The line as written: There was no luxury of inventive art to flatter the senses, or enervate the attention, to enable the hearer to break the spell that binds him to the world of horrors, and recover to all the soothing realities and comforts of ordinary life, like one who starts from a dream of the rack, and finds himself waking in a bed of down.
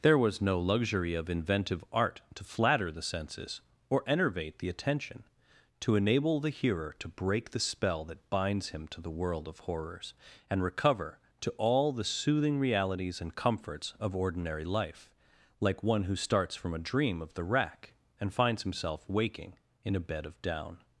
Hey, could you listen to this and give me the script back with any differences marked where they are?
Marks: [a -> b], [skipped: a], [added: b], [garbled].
There was no luxury of inventive art to flatter the senses, or enervate the attention, to enable the hearer to break the spell that binds him to the world of horrors, and recover to all the soothing realities and comforts of ordinary life, like one who starts from a dream of the rack, and finds himself waking in a bed of down.